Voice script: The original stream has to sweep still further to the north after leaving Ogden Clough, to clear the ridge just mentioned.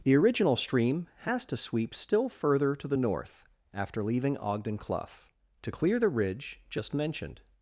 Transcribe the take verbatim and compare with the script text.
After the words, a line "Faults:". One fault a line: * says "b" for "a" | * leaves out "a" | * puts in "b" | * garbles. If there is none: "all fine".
The original stream has to sweep still further to the north after leaving Ogden Clough, to clear the ridge just mentioned.
Faults:
all fine